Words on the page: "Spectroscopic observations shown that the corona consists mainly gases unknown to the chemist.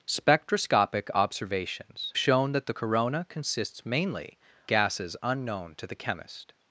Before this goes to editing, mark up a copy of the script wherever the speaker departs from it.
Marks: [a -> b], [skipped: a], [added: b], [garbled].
"Spectroscopic observations shown that the corona consists mainly gases unknown to the chemist.